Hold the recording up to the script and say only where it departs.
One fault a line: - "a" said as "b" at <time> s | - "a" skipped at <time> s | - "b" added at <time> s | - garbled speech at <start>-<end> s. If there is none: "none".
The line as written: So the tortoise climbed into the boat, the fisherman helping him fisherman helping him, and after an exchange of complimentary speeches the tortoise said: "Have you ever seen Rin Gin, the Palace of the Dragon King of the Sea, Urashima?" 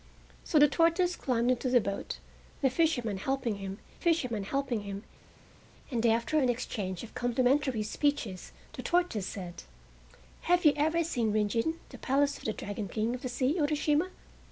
none